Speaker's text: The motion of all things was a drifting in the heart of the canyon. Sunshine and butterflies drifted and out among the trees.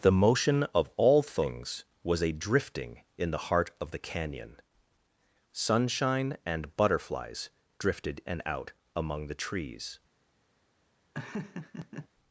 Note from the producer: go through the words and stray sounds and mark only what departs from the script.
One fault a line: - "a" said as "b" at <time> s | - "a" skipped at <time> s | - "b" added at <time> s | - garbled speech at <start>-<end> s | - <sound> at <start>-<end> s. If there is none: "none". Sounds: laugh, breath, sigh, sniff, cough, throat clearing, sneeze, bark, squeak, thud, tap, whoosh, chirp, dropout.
- laugh at 11.1-12.1 s